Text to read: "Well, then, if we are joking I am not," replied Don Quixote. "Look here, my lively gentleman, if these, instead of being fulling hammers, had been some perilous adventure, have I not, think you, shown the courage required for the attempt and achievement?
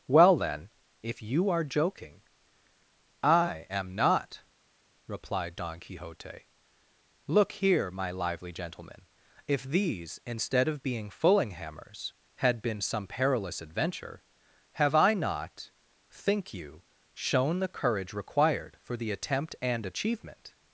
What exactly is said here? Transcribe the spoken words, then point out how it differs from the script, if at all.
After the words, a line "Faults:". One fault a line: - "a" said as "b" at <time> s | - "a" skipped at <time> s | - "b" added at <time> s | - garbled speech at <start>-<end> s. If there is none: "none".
"Well, then, if you are joking I am not," replied Don Quixote. "Look here, my lively gentleman, if these, instead of being fulling hammers, had been some perilous adventure, have I not, think you, shown the courage required for the attempt and achievement?
Faults:
- "we" said as "you" at 1.2 s